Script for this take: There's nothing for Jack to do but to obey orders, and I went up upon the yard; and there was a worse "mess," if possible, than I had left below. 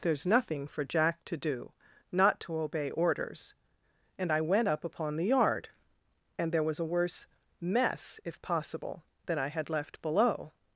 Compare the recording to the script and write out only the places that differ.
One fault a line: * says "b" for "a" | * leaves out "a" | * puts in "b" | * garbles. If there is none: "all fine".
* says "not" for "but"